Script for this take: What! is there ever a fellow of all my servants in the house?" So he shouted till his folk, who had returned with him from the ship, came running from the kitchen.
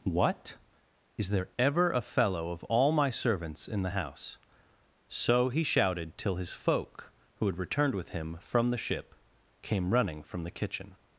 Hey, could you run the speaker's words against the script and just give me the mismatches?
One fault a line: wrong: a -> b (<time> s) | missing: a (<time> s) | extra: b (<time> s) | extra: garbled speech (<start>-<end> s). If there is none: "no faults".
no faults